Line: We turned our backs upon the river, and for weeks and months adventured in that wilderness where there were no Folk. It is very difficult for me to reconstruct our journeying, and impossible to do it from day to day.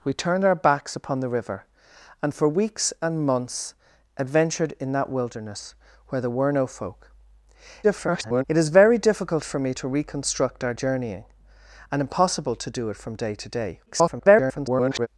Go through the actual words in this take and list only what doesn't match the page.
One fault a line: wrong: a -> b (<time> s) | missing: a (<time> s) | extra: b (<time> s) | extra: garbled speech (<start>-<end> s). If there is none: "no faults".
extra: garbled speech (7.8-8.4 s)
extra: garbled speech (13.9-15.1 s)